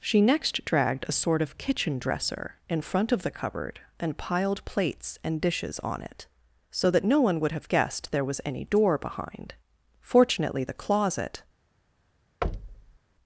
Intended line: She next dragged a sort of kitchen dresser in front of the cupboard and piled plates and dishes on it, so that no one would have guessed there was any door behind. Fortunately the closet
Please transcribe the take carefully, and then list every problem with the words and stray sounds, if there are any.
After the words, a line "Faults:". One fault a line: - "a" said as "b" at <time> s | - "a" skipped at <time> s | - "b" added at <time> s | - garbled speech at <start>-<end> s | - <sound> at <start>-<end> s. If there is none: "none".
She next dragged a sort of kitchen dresser in front of the cupboard and piled plates and dishes on it, so that no one would have guessed there was any door behind. Fortunately the closet
Faults:
- thud at 12.4-13.0 s